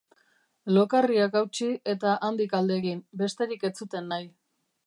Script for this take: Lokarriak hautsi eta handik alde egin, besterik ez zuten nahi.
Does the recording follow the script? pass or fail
pass